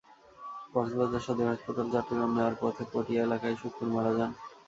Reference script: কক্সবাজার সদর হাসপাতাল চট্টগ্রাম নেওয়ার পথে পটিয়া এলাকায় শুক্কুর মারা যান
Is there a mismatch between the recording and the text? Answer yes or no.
no